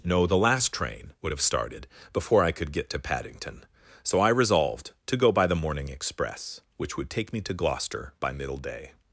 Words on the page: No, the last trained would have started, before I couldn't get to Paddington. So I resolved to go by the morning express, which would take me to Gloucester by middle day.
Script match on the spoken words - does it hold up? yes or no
no